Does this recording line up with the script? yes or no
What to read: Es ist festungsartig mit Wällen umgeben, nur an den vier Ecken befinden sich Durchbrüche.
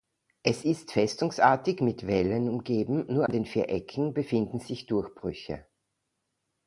yes